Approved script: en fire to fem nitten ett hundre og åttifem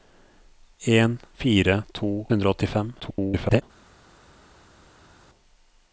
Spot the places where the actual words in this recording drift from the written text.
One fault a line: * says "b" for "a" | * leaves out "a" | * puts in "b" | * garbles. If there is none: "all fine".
* leaves out "fem nitten ett"
* garbles